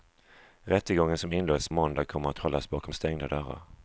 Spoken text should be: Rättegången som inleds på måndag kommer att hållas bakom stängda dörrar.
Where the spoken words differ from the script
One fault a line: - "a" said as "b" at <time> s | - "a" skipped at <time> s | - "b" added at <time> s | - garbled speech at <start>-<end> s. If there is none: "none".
- "på" skipped at 1.7 s